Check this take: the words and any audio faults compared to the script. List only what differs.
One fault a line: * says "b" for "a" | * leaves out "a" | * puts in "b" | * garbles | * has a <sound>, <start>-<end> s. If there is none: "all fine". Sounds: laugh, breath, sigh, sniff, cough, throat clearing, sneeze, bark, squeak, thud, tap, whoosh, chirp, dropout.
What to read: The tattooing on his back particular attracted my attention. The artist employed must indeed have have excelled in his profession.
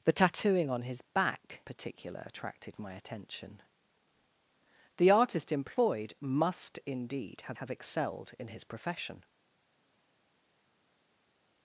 all fine